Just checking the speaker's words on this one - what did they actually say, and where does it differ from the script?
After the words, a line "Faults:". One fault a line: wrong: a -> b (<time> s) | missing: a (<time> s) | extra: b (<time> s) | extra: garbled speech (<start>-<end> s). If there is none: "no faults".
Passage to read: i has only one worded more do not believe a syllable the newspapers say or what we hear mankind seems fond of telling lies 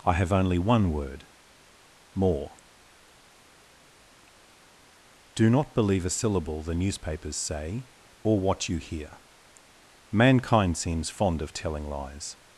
i have only one word more do not believe a syllable the newspapers say or what you hear mankind seems fond of telling lies
Faults:
wrong: has -> have (0.1 s)
wrong: worded -> word (0.9 s)
wrong: we -> you (8.7 s)